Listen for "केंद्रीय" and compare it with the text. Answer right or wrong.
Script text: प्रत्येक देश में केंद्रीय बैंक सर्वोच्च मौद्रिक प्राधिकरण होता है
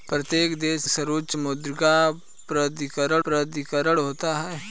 wrong